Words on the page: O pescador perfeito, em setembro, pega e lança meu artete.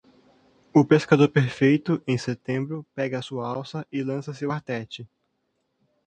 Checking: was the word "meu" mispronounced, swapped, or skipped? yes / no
yes